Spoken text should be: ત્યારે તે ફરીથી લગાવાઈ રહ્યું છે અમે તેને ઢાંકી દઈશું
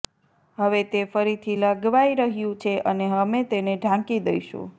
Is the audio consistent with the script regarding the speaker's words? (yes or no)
no